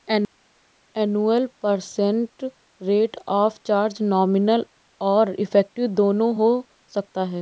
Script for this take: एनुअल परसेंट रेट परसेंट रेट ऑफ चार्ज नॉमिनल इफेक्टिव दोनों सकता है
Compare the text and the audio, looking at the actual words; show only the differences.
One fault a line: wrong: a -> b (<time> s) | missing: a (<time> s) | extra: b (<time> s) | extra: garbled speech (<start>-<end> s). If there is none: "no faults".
missing: परसेंट रेट (3.2 s)
extra: और (5.0 s)
extra: हो (6.3 s)